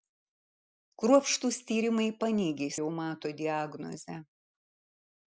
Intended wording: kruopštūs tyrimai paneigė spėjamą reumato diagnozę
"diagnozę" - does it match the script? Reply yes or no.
yes